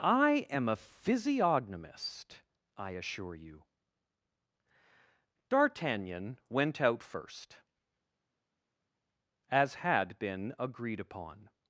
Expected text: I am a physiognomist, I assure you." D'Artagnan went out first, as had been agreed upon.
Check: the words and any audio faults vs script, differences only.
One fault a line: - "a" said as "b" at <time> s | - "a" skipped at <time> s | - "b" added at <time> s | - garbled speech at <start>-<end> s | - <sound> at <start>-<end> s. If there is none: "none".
none